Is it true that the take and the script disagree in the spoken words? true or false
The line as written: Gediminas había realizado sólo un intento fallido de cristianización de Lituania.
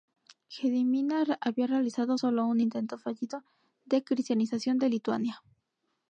false